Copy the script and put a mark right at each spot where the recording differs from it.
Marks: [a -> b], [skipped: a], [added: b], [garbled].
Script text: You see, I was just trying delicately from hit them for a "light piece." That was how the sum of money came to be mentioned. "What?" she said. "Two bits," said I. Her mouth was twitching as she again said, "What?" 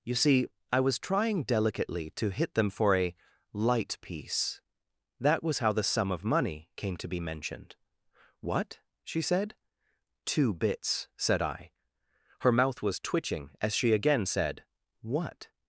You see, I was [skipped: just] trying delicately [from -> to] hit them for a "light piece." That was how the sum of money came to be mentioned. "What?" she said. "Two bits," said I. Her mouth was twitching as she again said, "What?"